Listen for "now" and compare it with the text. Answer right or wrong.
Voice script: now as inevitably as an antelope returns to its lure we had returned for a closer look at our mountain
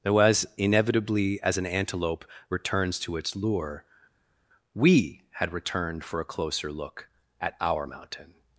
wrong